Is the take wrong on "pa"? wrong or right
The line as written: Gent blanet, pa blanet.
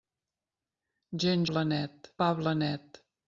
right